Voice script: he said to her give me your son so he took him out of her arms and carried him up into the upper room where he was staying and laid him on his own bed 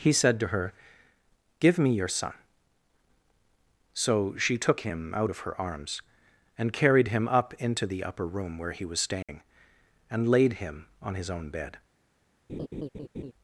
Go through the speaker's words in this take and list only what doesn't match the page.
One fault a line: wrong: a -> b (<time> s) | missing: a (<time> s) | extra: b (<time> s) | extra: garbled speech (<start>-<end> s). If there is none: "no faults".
wrong: he -> she (4.3 s)